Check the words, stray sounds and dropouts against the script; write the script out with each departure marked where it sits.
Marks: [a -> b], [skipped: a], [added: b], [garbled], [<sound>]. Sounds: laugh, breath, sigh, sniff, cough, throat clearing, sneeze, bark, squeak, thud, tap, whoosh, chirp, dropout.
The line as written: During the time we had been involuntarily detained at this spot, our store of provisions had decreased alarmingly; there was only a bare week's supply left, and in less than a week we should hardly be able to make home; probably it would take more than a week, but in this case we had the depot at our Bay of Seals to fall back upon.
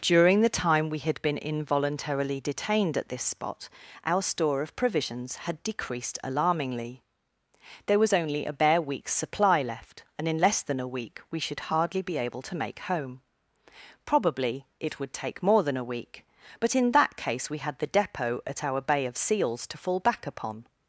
During the time we had been involuntarily detained at this spot, our store of provisions had decreased alarmingly; there was only a bare week's supply left, and in less than a week we should hardly be able to make home; probably it would take more than a week, but in [this -> that] case we had the depot at our Bay of Seals to fall back upon.